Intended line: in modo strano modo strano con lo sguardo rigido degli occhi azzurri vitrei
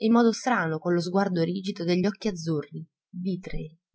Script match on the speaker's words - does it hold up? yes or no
no